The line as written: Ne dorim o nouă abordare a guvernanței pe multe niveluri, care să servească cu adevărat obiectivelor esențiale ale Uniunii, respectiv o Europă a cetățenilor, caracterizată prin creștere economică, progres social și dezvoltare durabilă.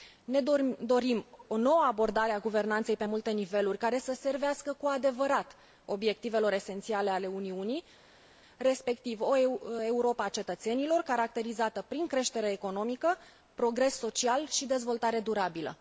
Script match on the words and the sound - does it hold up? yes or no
yes